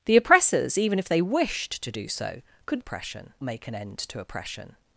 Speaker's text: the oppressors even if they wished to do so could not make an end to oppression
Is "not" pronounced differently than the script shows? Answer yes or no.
yes